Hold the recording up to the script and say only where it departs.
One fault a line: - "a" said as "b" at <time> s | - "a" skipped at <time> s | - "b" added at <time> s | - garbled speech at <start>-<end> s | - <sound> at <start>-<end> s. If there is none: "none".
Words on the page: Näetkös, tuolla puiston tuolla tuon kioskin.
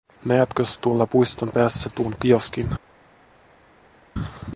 - "tuolla" said as "päässä" at 1.5 s